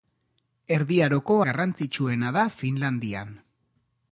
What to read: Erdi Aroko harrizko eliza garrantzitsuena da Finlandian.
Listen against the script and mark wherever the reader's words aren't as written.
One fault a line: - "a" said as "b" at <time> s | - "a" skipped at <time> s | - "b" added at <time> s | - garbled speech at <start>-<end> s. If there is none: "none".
- "harrizko eliza" skipped at 1.4 s